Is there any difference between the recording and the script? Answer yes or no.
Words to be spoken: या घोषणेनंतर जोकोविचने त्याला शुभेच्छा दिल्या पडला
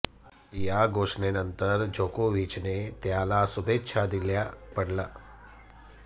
no